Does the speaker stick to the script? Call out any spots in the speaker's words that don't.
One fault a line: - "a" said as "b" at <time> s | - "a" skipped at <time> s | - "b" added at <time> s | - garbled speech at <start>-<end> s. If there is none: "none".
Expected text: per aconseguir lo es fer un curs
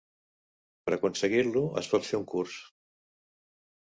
- "pot" added at 1.9 s